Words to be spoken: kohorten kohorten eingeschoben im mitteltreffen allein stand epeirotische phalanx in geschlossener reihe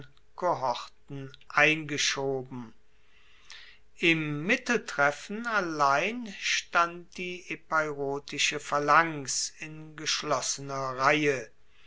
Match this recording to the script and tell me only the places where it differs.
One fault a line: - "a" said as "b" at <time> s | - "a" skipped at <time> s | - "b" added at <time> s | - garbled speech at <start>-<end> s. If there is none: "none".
- "kohorten" skipped at 1.3 s
- "die" added at 7.2 s